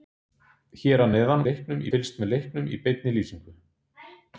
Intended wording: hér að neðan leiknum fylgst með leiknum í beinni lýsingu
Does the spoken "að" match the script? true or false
true